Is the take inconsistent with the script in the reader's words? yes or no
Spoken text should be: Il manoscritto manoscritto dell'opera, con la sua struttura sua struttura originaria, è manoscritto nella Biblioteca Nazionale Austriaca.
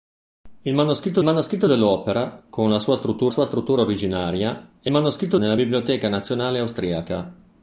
no